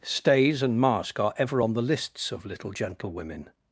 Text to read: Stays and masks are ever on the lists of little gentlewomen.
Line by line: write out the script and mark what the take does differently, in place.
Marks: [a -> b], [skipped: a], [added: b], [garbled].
Stays and [masks -> mask] are ever on the lists of little gentlewomen.